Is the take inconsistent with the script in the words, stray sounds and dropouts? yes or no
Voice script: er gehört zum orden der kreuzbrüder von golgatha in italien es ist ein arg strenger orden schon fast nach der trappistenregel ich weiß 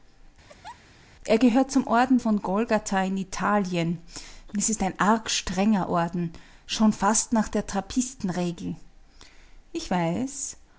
yes